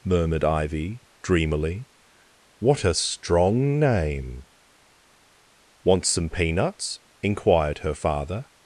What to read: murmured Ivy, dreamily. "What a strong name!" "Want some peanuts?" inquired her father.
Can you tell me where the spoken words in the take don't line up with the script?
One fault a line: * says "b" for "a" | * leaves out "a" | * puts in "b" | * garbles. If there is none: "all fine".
all fine